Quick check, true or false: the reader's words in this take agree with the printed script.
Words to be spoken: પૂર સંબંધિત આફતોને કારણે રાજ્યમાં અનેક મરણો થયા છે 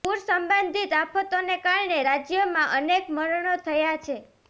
true